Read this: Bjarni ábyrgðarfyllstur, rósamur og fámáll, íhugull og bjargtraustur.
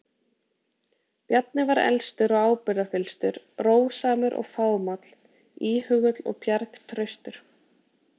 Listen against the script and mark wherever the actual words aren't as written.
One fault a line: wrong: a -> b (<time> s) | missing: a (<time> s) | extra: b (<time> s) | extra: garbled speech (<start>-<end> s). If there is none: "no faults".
extra: var elstur og (1.7 s)